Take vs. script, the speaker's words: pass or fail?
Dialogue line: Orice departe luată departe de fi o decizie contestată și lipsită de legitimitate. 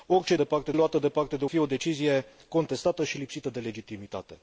pass